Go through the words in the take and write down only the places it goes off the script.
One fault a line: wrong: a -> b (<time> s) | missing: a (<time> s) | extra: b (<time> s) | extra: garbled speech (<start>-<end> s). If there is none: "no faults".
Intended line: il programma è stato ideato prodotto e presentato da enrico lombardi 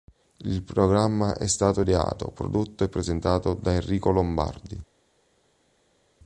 no faults